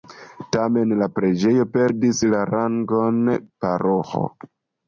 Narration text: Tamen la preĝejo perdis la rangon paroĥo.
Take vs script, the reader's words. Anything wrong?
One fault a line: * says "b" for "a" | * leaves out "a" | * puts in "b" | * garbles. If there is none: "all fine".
all fine